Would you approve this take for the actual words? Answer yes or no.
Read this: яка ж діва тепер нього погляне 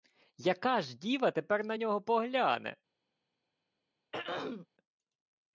no